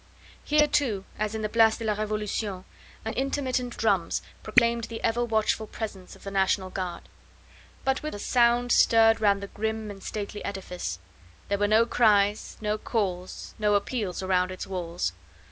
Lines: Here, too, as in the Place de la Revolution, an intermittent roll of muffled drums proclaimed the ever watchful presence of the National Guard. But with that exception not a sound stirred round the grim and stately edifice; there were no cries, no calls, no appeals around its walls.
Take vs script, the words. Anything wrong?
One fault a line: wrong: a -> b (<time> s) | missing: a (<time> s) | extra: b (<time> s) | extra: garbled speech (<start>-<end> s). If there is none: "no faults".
missing: roll of muffled (3.8 s)
missing: that exception not (8.2 s)